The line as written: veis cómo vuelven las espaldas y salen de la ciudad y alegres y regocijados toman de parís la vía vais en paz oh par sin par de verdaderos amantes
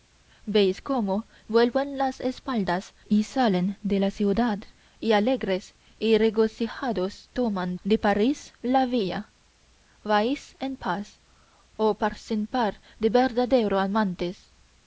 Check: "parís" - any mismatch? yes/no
no